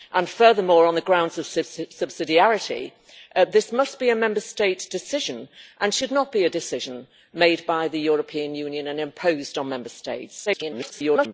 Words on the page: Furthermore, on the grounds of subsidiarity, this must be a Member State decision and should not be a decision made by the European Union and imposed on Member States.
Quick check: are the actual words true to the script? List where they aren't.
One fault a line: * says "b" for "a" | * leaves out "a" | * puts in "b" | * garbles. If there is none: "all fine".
* garbles